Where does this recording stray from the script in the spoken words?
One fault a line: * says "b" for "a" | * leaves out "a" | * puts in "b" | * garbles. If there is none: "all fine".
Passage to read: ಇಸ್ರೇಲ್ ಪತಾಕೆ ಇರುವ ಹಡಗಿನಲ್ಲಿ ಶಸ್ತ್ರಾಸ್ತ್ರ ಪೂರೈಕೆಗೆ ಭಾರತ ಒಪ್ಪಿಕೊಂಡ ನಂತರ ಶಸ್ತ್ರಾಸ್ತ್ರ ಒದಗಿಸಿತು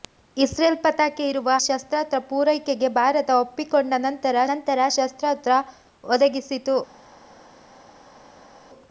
* leaves out "ಹಡಗಿನಲ್ಲಿ"
* puts in "ನಂತರ"